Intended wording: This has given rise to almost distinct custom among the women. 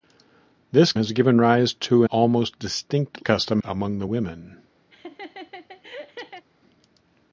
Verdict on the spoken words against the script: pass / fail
pass